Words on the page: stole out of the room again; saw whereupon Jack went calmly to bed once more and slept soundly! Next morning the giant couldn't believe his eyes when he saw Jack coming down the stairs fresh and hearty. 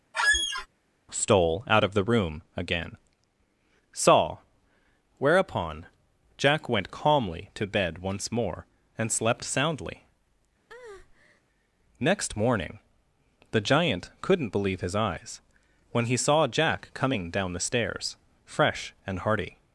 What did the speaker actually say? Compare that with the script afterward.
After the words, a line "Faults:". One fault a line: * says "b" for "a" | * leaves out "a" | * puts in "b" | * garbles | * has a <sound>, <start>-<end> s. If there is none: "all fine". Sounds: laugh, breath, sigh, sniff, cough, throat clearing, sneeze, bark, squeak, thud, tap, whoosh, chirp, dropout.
stole out of the room again; saw whereupon Jack went calmly to bed once more and slept soundly! Next morning the giant couldn't believe his eyes when he saw Jack coming down the stairs fresh and hearty.
Faults:
* has a squeak, 0.1-0.7 s
* has a breath, 10.7-11.4 s